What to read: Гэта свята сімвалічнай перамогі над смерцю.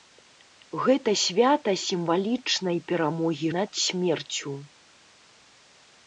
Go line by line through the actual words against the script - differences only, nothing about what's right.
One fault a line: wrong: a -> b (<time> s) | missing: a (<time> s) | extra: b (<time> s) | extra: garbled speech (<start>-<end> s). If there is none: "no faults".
no faults